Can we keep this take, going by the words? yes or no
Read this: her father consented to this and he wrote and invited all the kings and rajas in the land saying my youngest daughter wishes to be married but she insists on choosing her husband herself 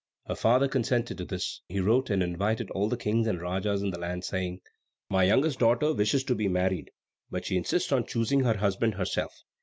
no